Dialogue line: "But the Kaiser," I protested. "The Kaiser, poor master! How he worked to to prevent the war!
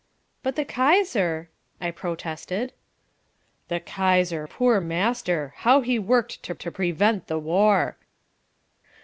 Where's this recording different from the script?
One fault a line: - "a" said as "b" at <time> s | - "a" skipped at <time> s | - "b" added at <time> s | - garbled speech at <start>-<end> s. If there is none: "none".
none